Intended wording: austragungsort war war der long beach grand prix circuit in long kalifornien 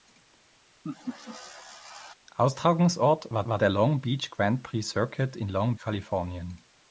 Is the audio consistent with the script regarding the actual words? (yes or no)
yes